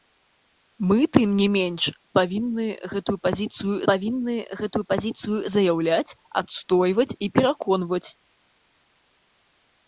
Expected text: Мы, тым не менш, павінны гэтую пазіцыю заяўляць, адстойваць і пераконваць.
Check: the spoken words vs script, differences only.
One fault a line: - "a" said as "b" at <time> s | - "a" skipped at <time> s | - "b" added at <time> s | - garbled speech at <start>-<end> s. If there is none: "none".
- "павінны гэтую пазіцыю" added at 3.9 s